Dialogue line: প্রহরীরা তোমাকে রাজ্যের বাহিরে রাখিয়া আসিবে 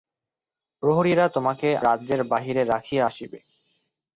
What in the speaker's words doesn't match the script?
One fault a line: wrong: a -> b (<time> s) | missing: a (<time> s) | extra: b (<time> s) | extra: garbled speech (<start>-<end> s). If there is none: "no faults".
no faults